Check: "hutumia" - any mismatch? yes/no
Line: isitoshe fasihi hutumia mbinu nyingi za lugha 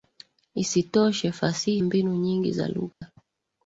yes